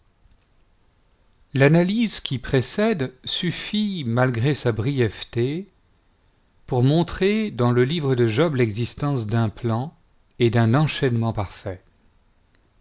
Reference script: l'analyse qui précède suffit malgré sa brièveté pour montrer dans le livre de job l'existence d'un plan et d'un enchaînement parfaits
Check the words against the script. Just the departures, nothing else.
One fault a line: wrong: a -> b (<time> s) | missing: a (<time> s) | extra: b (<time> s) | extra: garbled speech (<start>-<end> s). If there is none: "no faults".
no faults